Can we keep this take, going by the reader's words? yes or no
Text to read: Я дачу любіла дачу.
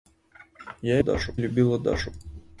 yes